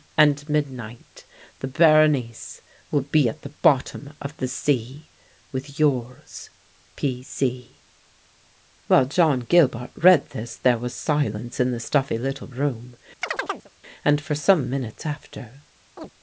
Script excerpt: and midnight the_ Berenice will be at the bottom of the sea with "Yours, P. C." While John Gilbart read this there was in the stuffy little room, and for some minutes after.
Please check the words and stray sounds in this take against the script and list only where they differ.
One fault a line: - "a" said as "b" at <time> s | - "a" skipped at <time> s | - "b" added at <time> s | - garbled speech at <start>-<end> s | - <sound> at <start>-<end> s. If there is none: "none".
- "silence" added at 10.9 s
- chirp at 13.2-13.7 s
- chirp at 16.0-16.1 s